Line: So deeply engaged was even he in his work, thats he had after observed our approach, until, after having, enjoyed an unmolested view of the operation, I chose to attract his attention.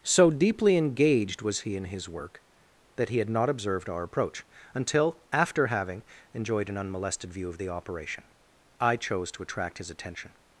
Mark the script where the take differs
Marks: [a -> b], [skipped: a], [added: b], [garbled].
So deeply engaged was [skipped: even] he in his work, [thats -> that] he had [after -> not] observed our approach, until, after having, enjoyed an unmolested view of the operation, I chose to attract his attention.